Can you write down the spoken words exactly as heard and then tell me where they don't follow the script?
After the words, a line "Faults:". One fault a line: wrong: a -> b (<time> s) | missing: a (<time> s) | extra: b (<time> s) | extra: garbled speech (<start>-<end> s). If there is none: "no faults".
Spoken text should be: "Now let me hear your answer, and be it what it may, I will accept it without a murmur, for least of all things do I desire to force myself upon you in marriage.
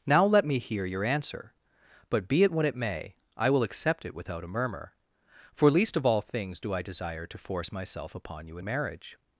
"Now let me hear your answer, but be it what it may, I will accept it without a murmur, for least of all things do I desire to force myself upon you in marriage.
Faults:
wrong: and -> but (2.1 s)